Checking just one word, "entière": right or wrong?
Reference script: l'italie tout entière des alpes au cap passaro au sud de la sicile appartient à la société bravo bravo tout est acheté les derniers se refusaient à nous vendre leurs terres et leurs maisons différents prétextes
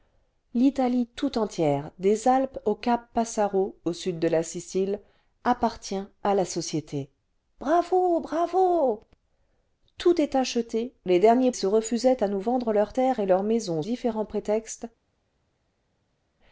right